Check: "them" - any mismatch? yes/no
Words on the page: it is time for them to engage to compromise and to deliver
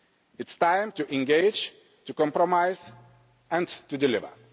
yes